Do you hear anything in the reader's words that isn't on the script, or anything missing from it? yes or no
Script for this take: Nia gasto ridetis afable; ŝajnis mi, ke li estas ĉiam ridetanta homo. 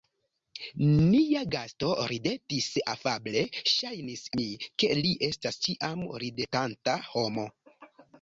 no